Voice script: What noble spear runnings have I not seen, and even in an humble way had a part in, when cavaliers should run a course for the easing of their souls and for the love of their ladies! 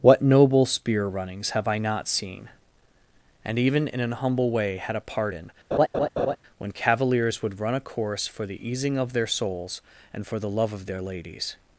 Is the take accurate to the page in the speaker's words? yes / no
no